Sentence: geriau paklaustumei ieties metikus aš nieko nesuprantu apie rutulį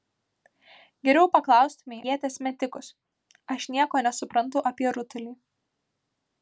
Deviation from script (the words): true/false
false